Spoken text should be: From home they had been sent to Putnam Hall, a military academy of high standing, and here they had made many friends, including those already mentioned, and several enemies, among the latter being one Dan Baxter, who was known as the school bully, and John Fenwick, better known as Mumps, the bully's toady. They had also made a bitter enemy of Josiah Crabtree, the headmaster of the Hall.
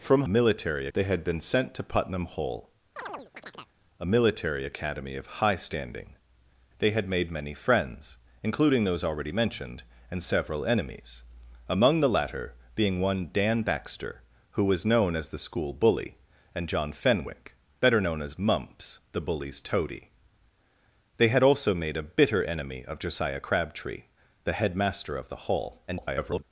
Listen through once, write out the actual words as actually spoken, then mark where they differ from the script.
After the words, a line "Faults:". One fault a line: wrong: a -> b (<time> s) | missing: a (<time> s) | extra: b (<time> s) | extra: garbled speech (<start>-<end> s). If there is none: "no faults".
From military they had been sent to Putnam Hall, a military academy of high standing, they had made many friends, including those already mentioned, and several enemies, among the latter being one Dan Baxter, who was known as the school bully, and John Fenwick, better known as Mumps, the bully's toady. They had also made a bitter enemy of Josiah Crabtree, the headmaster of the Hall. [garbled]
Faults:
wrong: home -> military (0.3 s)
missing: and here (6.2 s)
extra: garbled speech (25.9-26.4 s)